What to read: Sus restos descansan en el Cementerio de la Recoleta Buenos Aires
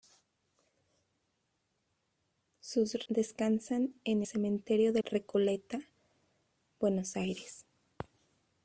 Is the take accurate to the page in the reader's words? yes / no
no